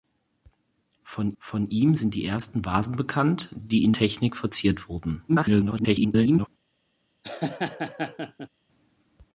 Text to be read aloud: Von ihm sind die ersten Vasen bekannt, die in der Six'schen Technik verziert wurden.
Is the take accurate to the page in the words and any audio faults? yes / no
no